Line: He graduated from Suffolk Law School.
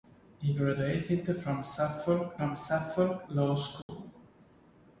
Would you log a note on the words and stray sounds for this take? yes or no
yes